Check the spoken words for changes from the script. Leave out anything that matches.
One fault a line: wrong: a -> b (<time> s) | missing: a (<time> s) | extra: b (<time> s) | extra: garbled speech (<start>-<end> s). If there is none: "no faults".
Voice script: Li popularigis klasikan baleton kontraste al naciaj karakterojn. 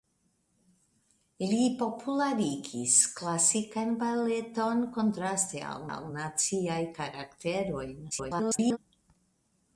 extra: al (5.9 s)
extra: garbled speech (8.1-8.8 s)